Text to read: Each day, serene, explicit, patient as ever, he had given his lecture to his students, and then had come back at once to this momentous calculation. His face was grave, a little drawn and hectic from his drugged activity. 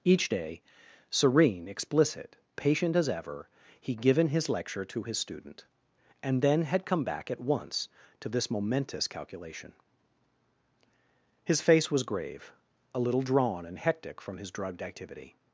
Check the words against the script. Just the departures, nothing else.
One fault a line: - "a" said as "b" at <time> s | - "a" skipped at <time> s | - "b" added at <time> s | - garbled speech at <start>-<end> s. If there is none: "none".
- "had" skipped at 4.0 s
- "students" said as "student" at 5.2 s